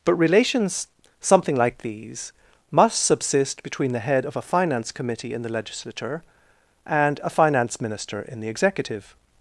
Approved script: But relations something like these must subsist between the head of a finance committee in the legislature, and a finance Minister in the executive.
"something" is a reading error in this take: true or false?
false